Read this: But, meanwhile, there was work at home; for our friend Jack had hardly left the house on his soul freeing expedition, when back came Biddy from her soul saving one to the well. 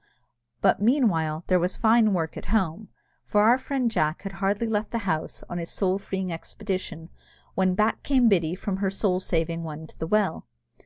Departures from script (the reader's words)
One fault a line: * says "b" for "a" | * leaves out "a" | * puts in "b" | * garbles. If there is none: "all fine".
* puts in "fine"